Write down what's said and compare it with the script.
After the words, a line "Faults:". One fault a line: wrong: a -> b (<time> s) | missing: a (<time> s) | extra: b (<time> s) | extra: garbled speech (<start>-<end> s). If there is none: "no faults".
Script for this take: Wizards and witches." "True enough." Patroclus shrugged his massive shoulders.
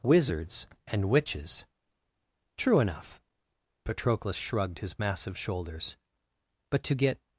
Wizards and witches." "True enough." Patroclus shrugged his massive shoulders. "But to get
Faults:
extra: But to get (6.7 s)